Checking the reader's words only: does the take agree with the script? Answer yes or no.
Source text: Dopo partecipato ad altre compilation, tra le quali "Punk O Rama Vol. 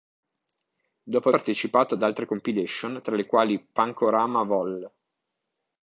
yes